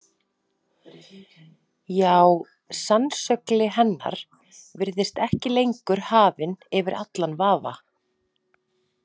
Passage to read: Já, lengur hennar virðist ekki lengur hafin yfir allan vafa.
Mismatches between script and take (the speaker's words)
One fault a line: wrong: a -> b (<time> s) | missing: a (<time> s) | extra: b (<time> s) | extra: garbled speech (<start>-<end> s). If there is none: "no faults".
wrong: lengur -> sannsögli (2.8 s)